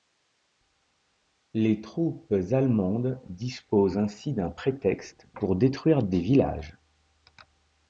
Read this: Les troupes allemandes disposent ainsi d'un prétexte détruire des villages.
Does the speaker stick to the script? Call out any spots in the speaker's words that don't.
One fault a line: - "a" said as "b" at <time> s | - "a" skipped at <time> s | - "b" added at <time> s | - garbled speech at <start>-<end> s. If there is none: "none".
- "pour" added at 5.3 s